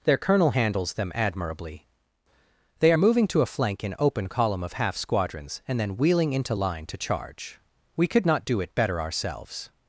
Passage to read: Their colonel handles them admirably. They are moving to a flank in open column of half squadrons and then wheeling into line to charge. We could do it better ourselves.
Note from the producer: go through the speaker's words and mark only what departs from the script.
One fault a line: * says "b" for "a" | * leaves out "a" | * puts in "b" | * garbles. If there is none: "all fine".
* puts in "not"